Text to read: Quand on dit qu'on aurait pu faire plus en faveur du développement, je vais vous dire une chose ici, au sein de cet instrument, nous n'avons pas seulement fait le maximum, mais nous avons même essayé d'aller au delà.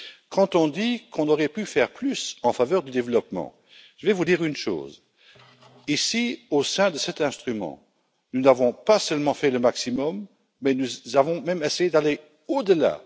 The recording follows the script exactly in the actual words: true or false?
true